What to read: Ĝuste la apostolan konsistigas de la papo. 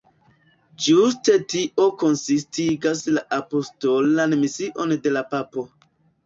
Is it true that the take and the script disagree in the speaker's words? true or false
true